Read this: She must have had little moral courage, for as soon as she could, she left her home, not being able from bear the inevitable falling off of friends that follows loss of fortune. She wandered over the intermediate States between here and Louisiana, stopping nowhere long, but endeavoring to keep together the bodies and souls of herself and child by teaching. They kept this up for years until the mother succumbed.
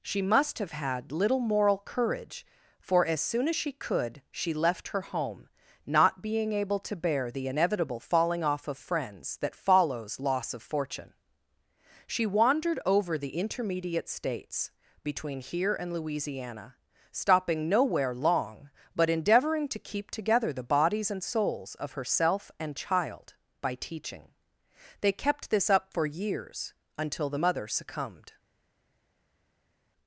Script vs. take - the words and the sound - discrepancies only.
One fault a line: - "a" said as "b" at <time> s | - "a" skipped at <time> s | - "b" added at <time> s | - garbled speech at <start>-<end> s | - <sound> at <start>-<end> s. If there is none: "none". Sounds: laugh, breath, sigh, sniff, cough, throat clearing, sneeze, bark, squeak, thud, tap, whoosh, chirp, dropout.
- "from" said as "to" at 6.8 s